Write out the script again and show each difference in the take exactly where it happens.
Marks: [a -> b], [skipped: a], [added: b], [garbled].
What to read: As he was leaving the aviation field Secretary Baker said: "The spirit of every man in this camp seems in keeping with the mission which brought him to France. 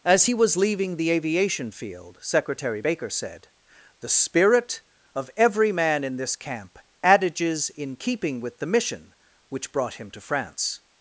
As he was leaving the aviation field Secretary Baker said: "The spirit of every man in this camp [seems -> adages] in keeping with the mission which brought him to France.